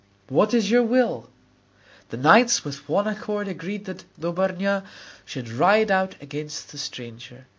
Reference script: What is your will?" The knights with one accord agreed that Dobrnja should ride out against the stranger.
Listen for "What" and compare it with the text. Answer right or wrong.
right